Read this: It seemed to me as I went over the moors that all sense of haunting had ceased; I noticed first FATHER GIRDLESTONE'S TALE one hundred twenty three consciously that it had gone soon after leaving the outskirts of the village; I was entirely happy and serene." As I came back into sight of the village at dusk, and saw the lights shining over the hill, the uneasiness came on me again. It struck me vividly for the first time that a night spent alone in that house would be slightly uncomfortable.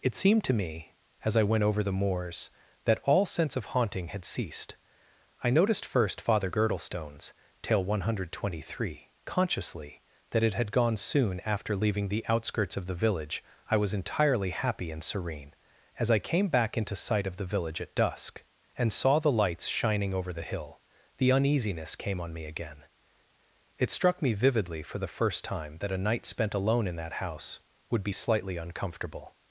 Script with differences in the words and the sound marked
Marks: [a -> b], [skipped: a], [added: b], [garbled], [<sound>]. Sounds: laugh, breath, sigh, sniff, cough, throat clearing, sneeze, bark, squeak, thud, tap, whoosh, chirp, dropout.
It seemed to me as I went over the moors that all sense of haunting had ceased; I noticed first FATHER GIRDLESTONE'S TALE one hundred twenty three consciously that it had gone soon after leaving the outskirts of the village; I was entirely happy and serene." As I came back into sight of the village at dusk, and saw the lights shining over the hill, the uneasiness came on me again. It struck me vividly for the first time that a night spent alone in that house would be slightly uncomfortable.